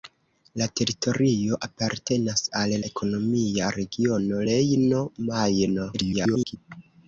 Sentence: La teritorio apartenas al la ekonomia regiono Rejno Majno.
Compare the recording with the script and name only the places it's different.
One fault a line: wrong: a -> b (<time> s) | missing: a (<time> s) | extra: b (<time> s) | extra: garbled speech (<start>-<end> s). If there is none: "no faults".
missing: la (2.7 s)
extra: garbled speech (5.9-6.6 s)